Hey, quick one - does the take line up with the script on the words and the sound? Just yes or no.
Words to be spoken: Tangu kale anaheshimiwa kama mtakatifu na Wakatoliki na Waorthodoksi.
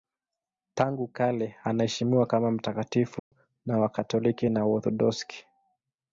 no